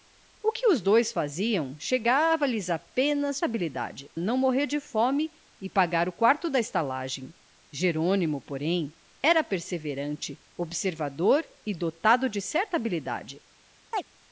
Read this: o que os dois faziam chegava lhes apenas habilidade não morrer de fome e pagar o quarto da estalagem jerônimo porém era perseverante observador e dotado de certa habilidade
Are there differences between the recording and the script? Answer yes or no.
no